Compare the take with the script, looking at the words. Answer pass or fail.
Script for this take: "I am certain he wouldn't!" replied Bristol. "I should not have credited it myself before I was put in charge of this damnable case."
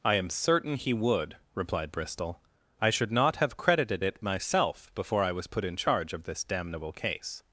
fail